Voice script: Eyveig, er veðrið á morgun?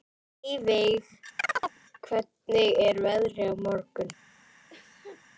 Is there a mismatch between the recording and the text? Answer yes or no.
yes